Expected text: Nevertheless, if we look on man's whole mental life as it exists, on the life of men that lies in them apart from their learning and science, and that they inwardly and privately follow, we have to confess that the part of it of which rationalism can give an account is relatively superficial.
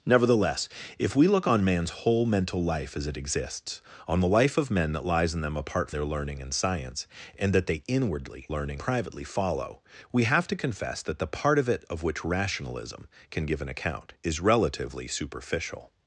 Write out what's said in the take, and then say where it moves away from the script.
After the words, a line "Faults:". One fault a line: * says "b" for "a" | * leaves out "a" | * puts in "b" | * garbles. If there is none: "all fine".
Nevertheless, if we look on man's whole mental life as it exists, on the life of men that lies in them apart their learning and science, and that they inwardly learning privately follow, we have to confess that the part of it of which rationalism can give an account is relatively superficial.
Faults:
* leaves out "from"
* says "learning" for "and"